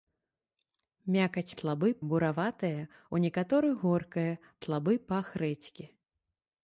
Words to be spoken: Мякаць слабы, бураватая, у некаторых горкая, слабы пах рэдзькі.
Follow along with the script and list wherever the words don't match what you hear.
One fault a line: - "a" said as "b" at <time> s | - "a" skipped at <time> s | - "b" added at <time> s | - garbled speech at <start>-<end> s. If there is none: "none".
none